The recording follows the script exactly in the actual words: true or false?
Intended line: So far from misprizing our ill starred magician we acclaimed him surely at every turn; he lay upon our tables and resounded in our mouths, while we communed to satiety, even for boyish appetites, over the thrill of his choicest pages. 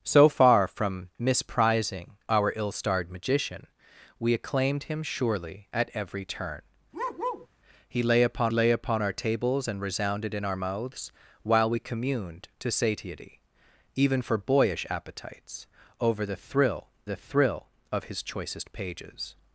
false